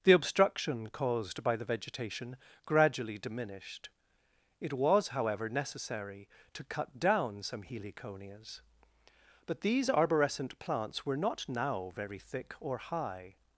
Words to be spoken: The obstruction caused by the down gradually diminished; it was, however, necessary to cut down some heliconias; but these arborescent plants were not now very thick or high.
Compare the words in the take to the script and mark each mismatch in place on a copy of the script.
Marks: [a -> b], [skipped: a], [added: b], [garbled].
The obstruction caused by the [down -> vegetation] gradually diminished; it was, however, necessary to cut down some heliconias; but these arborescent plants were not now very thick or high.